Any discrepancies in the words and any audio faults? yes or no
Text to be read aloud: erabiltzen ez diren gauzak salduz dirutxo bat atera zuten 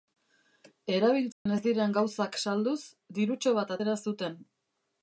yes